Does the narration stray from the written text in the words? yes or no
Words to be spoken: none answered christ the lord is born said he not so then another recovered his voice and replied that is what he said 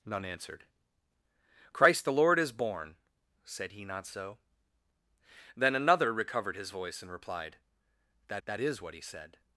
yes